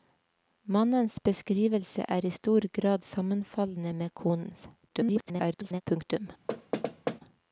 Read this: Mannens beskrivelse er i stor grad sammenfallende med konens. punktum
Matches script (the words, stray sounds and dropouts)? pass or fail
fail